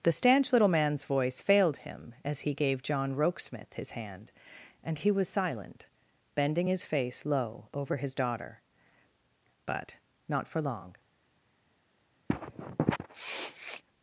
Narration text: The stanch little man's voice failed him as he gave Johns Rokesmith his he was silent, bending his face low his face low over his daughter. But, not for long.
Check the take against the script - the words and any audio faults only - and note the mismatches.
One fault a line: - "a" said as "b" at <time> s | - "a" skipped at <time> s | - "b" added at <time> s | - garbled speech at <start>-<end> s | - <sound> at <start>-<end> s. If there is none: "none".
- "Johns" said as "John" at 2.8 s
- "hand and" added at 3.9 s
- "his face low" skipped at 7.7 s
- sniff at 12.3-13.8 s